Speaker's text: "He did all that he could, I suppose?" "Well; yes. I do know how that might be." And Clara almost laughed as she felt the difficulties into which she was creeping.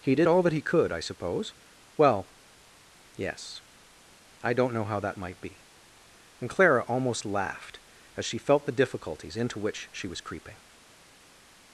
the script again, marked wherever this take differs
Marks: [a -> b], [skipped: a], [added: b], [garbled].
"He did all that he could, I suppose?" "Well; yes. I [do -> don't] know how that might be." And Clara almost laughed as she felt the difficulties into which she was creeping.